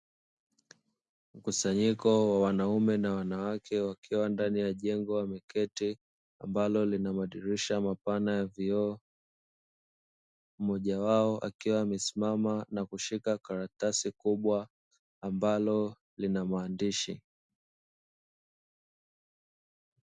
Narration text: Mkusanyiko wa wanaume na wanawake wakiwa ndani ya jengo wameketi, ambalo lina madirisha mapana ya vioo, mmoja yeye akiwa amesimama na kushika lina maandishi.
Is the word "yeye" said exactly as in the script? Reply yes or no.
no